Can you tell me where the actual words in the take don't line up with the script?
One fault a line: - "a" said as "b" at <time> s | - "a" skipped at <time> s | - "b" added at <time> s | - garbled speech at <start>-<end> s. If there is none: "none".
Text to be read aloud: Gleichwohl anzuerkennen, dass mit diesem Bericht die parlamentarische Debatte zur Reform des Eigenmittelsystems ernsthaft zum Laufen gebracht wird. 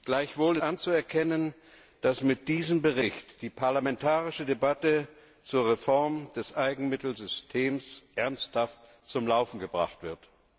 none